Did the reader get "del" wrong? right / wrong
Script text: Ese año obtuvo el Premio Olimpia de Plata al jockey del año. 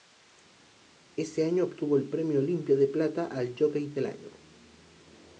right